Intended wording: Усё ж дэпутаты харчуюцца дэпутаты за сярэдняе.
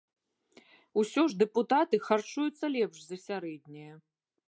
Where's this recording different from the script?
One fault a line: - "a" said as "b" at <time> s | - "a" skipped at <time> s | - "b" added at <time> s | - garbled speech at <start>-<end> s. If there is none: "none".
- "дэпутаты" said as "лепш" at 2.8 s